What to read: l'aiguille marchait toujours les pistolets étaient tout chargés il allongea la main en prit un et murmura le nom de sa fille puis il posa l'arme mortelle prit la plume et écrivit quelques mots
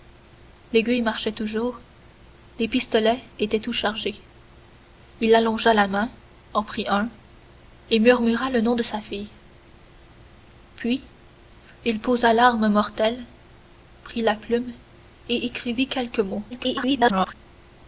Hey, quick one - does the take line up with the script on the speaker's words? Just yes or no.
no